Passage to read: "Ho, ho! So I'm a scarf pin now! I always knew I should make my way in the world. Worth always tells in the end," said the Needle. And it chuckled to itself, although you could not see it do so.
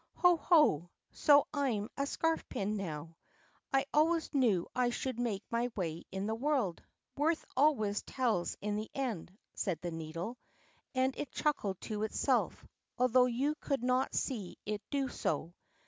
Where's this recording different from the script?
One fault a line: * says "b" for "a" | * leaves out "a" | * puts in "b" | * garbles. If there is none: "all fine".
all fine